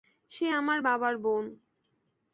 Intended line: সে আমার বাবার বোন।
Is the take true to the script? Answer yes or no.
yes